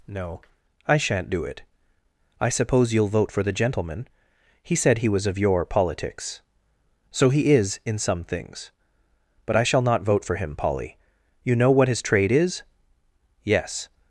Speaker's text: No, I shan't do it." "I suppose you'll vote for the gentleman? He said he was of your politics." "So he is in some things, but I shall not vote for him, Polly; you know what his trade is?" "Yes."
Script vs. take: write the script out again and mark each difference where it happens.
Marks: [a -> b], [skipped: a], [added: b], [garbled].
No, I shan't do it." "I suppose you'll vote for the gentleman? He said he was of your politics." "So he is in some things, but I shall not vote for him, Polly; you know what his trade is?" "Yes."